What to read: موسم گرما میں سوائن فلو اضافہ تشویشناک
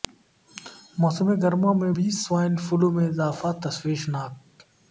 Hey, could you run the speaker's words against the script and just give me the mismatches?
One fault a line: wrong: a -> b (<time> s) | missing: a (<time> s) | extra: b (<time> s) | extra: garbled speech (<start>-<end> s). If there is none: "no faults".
extra: بھی (1.9 s)
extra: میں (2.9 s)